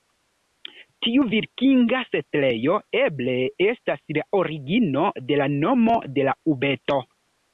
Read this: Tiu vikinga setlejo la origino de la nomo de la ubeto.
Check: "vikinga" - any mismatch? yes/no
no